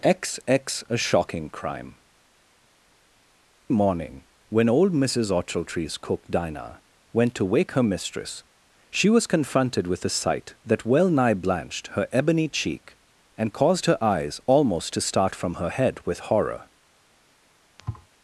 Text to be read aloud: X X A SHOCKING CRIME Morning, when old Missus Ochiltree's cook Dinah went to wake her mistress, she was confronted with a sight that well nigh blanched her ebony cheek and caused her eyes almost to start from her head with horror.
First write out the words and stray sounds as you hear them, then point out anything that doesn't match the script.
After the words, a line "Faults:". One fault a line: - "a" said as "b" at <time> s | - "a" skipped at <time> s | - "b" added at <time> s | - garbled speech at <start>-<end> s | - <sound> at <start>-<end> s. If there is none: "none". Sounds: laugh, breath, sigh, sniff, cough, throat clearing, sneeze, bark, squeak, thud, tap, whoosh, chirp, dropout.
X X A SHOCKING CRIME Morning, when old Missus Ochiltree's cook Dinah went to wake her mistress, she was confronted with a sight that well nigh blanched her ebony cheek and caused her eyes almost to start from her head with horror.
Faults:
- thud at 17.8-18.1 s